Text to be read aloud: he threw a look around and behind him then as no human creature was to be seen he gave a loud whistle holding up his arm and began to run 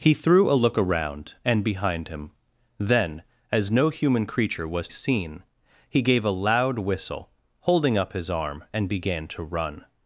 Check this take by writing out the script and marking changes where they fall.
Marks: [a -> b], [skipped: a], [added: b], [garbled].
he threw a look around and behind him then as no human creature was [skipped: to be] seen he gave a loud whistle holding up his arm and began to run